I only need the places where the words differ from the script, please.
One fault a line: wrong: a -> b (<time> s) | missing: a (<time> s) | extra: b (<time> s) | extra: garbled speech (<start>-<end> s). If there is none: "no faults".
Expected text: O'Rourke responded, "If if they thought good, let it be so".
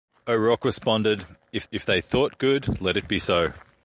no faults